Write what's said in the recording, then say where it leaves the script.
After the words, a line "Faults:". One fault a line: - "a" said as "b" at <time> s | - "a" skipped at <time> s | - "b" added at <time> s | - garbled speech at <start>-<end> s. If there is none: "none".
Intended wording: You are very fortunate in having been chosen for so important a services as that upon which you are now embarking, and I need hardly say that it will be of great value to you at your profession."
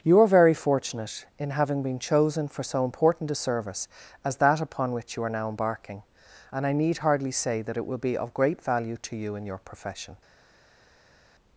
You are very fortunate in having been chosen for so important a service as that upon which you are now embarking, and I need hardly say that it will be of great value to you in your profession."
Faults:
- "services" said as "service" at 3.4 s
- "at" said as "in" at 9.3 s